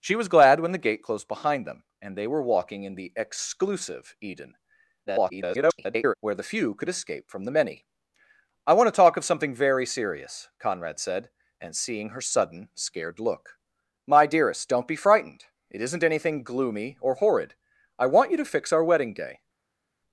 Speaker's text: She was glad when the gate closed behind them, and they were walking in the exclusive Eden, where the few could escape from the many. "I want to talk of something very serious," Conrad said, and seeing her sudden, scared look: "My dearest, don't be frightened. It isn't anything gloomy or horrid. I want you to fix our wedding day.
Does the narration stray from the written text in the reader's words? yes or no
yes